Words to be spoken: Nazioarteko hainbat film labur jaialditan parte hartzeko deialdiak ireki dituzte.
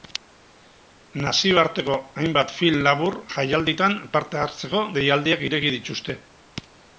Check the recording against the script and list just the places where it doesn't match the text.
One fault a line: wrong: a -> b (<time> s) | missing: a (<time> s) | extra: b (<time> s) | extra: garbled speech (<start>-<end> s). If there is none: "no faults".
no faults